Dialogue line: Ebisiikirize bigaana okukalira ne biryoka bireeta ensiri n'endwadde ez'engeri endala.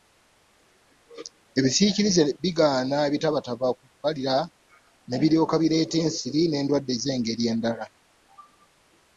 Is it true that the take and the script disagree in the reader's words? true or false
true